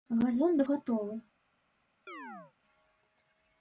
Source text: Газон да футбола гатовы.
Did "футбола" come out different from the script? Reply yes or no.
yes